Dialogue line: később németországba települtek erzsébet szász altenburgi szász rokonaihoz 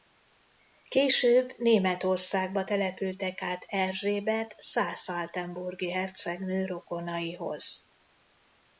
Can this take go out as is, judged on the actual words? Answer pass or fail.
fail